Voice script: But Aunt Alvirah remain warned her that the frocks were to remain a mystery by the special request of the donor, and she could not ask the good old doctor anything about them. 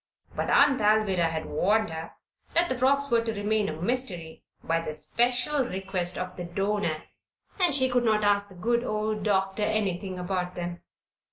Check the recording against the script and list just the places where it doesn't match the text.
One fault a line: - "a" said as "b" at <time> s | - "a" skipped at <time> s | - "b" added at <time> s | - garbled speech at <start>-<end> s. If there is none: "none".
- "remain" said as "had" at 1.3 s